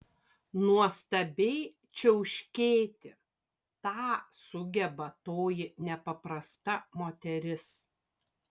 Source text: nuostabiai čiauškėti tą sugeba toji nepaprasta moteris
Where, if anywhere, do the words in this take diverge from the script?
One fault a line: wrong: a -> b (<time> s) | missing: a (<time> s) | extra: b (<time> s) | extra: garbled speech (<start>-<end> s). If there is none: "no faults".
no faults